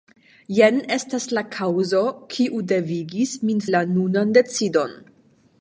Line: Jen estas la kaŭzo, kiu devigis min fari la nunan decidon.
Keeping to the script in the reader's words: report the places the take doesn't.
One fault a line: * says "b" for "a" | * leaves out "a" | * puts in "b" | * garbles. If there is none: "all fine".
* leaves out "fari"